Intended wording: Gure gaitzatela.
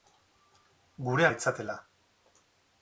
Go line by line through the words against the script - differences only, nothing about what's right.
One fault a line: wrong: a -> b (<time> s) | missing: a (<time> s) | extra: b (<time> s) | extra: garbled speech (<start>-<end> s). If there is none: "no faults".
no faults